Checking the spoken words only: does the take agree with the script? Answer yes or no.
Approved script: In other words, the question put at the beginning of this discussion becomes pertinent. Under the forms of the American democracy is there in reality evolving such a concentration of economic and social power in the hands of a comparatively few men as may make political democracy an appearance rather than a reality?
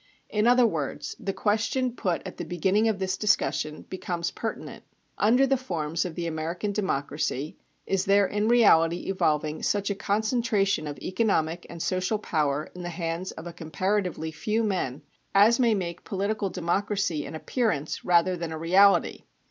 yes